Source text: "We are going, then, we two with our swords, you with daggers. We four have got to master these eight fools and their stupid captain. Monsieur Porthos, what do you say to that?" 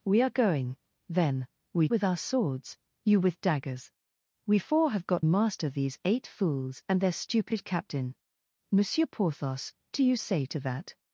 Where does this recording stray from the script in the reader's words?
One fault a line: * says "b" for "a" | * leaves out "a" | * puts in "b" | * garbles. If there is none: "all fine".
* leaves out "two"
* leaves out "to"
* leaves out "what"